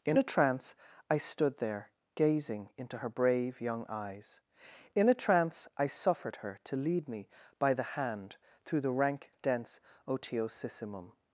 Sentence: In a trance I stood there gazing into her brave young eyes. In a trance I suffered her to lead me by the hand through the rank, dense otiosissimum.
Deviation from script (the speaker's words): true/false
false